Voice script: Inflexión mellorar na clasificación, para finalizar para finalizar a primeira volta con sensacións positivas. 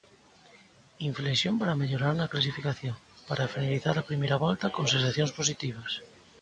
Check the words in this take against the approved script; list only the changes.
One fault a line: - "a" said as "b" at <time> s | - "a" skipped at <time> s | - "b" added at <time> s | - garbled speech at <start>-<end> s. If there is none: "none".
- "para" added at 1.6 s
- "para finalizar" skipped at 4.0 s